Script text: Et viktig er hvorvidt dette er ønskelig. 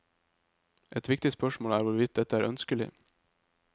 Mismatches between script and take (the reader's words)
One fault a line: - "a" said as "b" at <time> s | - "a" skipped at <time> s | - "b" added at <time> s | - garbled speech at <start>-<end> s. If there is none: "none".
- "spørsmål" added at 1.3 s